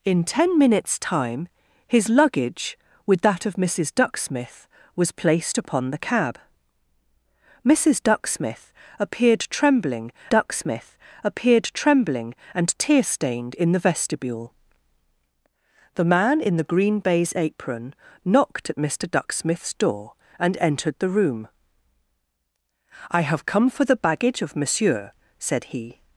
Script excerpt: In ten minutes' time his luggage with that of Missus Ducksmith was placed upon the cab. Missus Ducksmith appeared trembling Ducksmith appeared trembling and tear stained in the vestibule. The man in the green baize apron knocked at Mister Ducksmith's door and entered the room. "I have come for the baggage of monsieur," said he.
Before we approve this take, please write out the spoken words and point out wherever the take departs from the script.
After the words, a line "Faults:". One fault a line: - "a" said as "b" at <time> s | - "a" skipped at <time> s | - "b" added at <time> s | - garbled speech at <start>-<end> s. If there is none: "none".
In ten minutes' time his luggage with that of Missus Ducksmith was placed upon the cab. Missus Ducksmith appeared trembling Ducksmith appeared trembling and tear stained in the vestibule. The man in the green baize apron knocked at Mister Ducksmith's door and entered the room. "I have come for the baggage of monsieur," said he.
Faults:
none